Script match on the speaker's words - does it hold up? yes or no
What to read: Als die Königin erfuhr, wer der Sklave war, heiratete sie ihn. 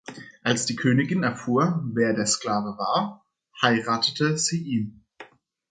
yes